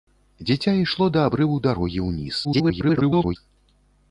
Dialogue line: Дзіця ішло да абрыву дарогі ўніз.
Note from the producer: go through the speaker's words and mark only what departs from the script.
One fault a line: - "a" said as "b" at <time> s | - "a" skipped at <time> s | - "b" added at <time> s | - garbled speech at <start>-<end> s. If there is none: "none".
- garbled speech at 2.4-3.4 s